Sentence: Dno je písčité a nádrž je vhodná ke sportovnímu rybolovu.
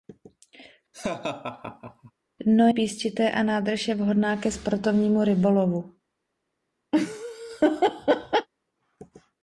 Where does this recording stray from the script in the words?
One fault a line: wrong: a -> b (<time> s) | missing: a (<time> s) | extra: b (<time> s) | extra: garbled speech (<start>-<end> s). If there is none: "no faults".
missing: je (2.7 s)